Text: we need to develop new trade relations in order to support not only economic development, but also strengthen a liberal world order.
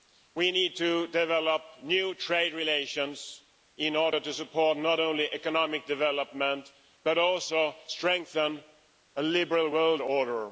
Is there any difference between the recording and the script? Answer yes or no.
no